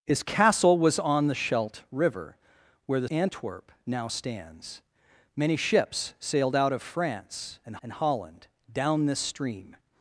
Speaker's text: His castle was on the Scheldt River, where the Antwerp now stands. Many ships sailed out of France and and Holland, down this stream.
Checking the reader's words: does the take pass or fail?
pass